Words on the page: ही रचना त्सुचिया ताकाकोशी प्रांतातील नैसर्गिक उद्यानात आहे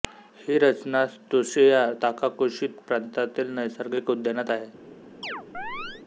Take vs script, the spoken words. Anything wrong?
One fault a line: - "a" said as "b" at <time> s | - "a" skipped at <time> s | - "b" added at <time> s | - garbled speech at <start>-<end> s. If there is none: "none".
none